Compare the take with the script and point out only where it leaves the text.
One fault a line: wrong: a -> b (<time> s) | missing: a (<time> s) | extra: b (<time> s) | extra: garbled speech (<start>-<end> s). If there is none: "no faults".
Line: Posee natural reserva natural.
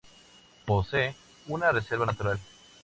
wrong: natural -> una (1.4 s)